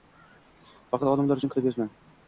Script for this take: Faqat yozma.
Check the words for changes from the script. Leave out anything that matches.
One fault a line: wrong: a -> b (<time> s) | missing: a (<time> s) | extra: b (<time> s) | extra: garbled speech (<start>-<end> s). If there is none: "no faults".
extra: olimlar uchun kitob (1.1 s)